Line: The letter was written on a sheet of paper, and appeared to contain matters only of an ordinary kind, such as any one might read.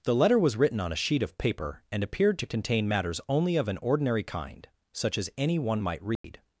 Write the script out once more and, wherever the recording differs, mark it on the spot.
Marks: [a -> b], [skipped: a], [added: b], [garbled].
The letter was written on a sheet of paper, and appeared to contain matters only of an ordinary kind, such as any one might read.